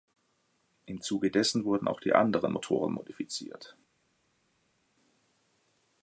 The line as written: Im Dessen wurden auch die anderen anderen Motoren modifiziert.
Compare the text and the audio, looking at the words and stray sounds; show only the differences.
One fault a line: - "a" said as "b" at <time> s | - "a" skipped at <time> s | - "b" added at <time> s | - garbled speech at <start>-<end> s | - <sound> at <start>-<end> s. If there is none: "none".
- "Zuge" added at 1.0 s
- "anderen" skipped at 2.5 s